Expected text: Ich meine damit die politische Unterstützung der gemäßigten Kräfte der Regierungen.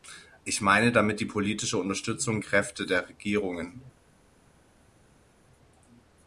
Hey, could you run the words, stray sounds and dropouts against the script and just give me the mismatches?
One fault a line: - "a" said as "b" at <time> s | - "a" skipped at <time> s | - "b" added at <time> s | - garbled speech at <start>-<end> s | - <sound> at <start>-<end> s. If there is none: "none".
- "der gemäßigten" skipped at 2.4 s